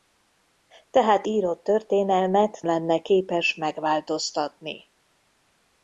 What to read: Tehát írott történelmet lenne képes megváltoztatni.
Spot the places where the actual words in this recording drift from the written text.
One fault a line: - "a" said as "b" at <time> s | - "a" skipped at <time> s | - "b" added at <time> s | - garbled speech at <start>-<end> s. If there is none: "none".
none